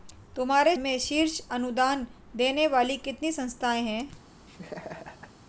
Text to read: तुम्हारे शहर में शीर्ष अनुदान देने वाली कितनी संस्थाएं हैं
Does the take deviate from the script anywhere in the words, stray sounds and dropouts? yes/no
yes